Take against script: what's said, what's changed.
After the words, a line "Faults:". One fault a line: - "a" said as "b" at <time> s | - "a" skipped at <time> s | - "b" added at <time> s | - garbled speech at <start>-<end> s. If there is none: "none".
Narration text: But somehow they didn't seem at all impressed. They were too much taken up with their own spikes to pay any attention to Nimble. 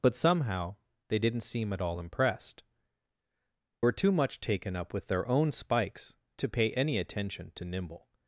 But somehow they didn't seem at all impressed. Were too much taken up with their own spikes to pay any attention to Nimble.
Faults:
- "They" skipped at 2.6 s